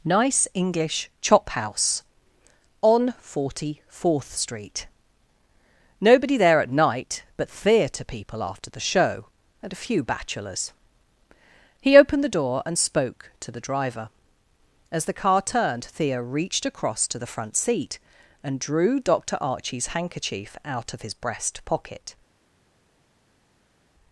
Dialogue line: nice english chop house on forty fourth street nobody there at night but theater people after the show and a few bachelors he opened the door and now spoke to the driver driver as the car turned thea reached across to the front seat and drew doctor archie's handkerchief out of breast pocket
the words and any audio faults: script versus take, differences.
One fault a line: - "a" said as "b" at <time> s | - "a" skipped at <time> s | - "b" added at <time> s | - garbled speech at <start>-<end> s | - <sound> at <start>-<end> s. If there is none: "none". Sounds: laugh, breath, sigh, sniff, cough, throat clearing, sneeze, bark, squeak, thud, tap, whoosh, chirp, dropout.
- "now" skipped at 12.8 s
- "driver" skipped at 14.1 s
- "his" added at 21.0 s